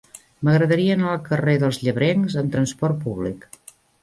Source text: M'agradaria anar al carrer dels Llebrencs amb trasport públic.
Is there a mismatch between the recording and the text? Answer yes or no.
no